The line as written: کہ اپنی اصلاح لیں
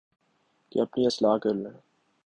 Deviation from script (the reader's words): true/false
true